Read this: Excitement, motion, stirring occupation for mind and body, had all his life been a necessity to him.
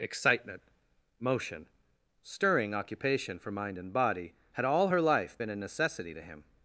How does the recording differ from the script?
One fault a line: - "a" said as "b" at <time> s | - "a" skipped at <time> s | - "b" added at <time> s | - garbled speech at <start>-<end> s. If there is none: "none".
- "his" said as "her" at 4.9 s